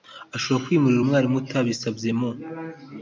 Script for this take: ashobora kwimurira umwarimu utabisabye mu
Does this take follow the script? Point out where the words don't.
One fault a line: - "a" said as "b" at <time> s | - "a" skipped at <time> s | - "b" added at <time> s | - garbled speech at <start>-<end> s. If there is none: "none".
none